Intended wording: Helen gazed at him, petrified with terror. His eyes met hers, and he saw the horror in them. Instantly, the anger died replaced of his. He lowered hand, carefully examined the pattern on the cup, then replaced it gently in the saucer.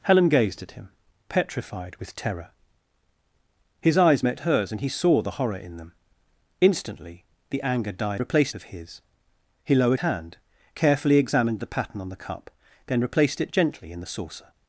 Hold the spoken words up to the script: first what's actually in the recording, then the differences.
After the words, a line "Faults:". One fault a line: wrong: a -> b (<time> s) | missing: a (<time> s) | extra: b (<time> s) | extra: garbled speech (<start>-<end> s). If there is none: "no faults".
Helen gazed at him, petrified with terror. His eyes met hers, and he saw the horror in them. Instantly, the anger died replaced of his. He lowered hand, carefully examined the pattern on the cup, then replaced it gently in the saucer.
Faults:
no faults